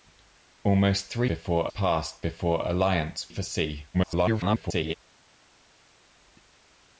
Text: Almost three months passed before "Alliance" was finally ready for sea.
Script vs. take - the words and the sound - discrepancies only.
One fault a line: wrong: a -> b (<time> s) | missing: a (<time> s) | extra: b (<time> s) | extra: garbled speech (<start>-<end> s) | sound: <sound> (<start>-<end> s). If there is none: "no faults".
wrong: months -> before (1.3 s)
missing: was finally ready (3.3 s)
extra: garbled speech (3.9-4.9 s)